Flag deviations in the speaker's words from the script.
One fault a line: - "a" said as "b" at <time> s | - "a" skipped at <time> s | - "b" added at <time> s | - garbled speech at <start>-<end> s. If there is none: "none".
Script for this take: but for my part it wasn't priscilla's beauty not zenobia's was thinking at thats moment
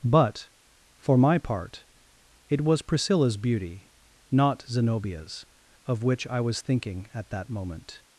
- "wasn't" said as "was" at 2.6 s
- "of which i" added at 5.9 s
- "thats" said as "that" at 7.3 s